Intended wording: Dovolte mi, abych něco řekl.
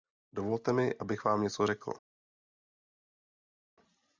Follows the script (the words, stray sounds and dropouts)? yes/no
no